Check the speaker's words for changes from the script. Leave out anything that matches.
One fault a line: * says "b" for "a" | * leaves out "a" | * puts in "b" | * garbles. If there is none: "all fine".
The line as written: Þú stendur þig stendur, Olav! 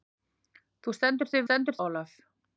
all fine